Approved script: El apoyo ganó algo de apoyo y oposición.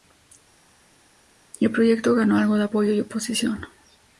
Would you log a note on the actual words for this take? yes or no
yes